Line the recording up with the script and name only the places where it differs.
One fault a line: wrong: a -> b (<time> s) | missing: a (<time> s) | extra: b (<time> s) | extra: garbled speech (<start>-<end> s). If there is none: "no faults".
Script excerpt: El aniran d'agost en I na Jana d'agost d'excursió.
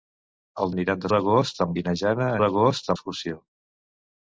no faults